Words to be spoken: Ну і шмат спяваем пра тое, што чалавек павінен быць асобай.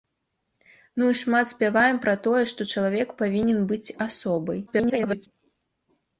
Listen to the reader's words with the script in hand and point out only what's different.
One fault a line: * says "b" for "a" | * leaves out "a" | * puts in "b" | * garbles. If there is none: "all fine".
* garbles